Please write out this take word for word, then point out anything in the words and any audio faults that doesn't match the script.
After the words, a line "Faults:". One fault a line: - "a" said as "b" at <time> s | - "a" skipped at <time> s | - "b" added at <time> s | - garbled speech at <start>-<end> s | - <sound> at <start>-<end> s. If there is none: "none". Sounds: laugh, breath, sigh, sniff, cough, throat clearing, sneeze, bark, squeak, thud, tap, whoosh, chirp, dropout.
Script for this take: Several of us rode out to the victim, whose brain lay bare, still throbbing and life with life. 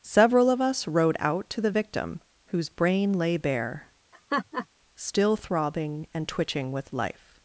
Several of us rode out to the victim, whose brain lay bare, still throbbing and twitching with life.
Faults:
- laugh at 4.1-4.7 s
- "life" said as "twitching" at 6.3 s